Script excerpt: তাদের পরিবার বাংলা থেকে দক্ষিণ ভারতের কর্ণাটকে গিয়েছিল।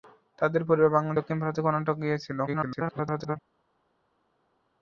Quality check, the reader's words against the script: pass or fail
fail